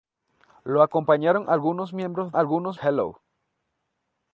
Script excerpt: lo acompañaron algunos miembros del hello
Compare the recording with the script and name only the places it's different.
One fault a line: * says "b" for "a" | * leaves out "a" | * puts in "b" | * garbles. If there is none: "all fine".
* says "algunos" for "del"